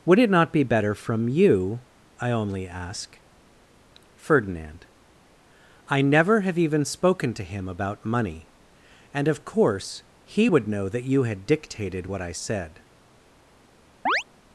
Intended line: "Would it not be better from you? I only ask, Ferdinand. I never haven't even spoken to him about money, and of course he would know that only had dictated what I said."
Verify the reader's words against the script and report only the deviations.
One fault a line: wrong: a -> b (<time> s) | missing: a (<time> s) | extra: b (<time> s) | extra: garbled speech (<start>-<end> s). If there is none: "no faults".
wrong: haven't -> have (6.4 s)
wrong: only -> you (11.0 s)